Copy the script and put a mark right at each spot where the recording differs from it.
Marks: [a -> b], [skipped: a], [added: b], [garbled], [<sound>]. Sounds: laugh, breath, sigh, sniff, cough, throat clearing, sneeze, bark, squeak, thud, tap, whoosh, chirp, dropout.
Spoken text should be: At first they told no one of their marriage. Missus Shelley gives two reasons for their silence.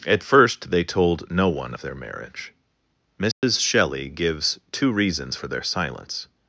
At first they told no one of their marriage. Missus [dropout] Shelley gives two reasons for their silence.